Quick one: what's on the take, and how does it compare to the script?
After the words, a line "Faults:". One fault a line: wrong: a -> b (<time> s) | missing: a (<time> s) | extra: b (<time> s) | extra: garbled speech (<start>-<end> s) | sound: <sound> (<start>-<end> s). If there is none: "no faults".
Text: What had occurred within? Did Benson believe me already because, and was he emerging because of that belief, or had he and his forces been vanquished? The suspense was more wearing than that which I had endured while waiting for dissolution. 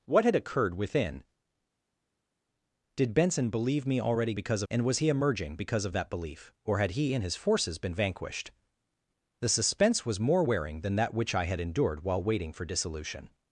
What had occurred within? Did Benson believe me already because, and was he emerging because of that belief, or had he and his forces been vanquished? The suspense was more wearing than that which I had endured while waiting for dissolution.
Faults:
no faults